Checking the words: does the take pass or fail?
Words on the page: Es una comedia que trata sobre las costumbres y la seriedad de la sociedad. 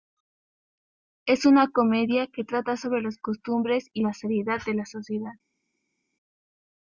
pass